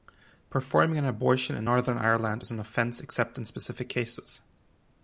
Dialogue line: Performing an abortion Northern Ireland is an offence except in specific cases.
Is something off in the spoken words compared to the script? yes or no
yes